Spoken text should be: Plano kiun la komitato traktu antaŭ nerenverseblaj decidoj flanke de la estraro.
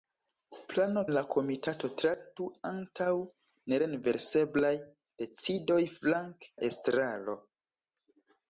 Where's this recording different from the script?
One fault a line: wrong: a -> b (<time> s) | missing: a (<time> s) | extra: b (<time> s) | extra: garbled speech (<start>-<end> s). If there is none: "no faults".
missing: kiun (1.0 s)
missing: de (6.5 s)